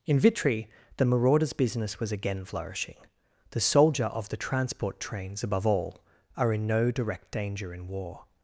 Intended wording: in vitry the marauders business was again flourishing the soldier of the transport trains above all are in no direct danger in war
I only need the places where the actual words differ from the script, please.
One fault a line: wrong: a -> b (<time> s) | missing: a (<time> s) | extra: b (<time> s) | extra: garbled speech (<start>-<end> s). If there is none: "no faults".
no faults